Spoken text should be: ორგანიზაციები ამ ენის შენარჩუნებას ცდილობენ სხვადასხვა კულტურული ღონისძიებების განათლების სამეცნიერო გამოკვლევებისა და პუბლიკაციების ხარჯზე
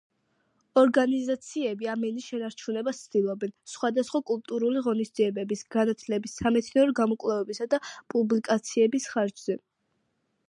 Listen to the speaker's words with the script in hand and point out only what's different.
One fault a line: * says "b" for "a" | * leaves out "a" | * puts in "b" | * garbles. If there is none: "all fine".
all fine